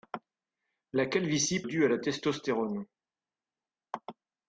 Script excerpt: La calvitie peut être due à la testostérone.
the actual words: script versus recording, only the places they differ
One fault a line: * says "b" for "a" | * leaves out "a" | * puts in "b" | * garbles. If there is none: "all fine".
* leaves out "peut être"